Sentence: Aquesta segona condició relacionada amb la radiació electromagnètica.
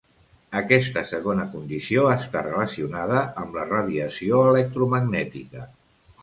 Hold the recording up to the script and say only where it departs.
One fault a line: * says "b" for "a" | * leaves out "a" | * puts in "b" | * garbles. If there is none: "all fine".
* puts in "està"